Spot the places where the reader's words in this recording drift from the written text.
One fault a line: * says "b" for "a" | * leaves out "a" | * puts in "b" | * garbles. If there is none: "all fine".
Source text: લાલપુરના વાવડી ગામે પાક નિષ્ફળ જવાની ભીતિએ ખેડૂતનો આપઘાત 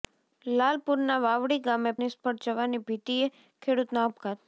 * leaves out "પાક"